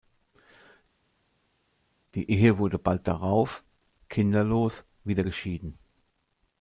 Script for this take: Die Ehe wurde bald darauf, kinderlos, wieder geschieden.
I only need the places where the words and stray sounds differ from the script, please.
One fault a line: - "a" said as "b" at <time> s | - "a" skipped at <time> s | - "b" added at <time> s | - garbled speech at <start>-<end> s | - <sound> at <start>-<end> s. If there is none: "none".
none